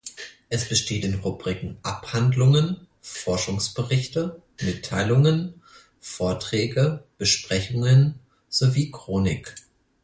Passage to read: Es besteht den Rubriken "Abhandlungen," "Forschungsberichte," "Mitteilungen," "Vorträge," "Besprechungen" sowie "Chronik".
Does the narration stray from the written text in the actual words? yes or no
no